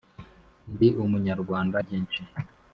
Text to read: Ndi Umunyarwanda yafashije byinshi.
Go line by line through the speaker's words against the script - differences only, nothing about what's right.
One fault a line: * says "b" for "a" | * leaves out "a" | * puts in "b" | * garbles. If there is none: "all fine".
* leaves out "yafashije"